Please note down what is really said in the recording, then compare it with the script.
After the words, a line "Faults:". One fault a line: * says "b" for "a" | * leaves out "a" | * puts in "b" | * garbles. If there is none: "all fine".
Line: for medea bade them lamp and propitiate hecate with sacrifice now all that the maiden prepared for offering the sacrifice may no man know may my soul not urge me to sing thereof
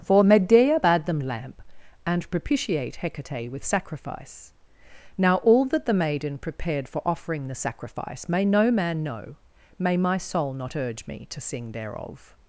for medea bade them lamp and propitiate hecate with sacrifice now all that the maiden prepared for offering the sacrifice may no man know may my soul not urge me to sing thereof
Faults:
all fine